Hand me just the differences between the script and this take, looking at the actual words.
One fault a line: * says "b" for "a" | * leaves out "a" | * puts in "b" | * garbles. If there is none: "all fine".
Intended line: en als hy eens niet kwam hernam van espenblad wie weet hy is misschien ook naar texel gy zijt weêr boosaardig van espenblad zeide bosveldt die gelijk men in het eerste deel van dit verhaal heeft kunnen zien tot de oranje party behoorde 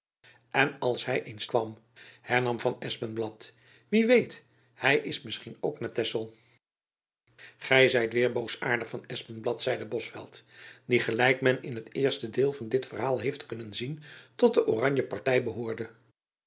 * leaves out "niet"